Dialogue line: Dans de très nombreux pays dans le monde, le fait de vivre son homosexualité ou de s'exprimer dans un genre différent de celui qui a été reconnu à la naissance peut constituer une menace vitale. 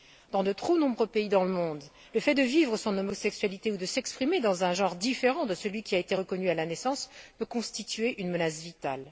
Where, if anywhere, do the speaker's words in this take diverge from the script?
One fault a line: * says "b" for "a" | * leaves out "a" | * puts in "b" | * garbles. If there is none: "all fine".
* says "trop" for "très"